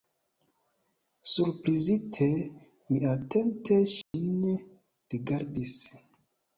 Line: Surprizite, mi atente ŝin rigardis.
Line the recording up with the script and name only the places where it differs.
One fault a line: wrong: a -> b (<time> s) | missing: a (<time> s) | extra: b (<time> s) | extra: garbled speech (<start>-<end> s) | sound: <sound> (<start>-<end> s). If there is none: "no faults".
sound: dropout (4.0-4.1 s)